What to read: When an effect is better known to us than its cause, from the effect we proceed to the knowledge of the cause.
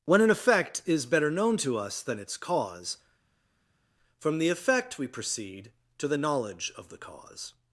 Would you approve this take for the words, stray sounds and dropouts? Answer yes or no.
yes